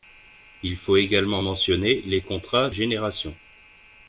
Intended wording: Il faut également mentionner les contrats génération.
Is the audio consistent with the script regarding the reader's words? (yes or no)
yes